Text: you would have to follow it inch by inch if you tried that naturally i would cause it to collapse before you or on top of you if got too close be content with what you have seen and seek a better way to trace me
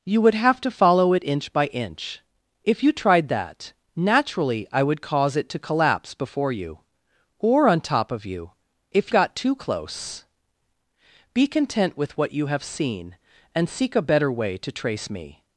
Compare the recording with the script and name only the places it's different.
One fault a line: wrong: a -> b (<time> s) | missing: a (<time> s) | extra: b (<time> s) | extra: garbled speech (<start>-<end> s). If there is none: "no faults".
no faults